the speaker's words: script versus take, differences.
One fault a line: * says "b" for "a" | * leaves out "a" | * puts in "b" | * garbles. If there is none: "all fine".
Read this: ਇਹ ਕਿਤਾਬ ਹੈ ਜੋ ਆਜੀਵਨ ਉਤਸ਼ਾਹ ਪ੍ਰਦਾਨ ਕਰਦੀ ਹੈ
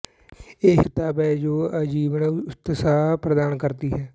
all fine